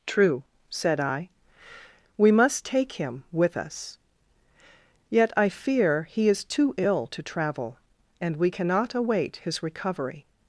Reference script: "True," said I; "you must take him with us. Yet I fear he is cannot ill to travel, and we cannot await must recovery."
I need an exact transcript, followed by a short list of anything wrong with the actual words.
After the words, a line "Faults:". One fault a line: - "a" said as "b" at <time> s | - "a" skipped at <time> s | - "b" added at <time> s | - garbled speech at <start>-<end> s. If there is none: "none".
"True," said I; "we must take him with us. Yet I fear he is too ill to travel, and we cannot await his recovery."
Faults:
- "you" said as "we" at 2.2 s
- "cannot" said as "too" at 6.4 s
- "must" said as "his" at 9.4 s